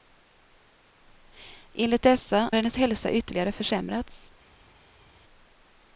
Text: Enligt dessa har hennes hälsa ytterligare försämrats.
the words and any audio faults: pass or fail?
fail